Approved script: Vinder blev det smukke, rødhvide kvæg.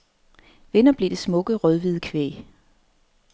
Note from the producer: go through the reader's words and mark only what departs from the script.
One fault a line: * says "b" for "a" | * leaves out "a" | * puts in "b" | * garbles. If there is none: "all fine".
all fine